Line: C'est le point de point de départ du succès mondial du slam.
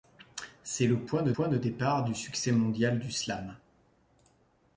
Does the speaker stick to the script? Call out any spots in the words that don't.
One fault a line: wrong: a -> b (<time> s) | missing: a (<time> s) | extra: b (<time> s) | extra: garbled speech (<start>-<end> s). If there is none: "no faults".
no faults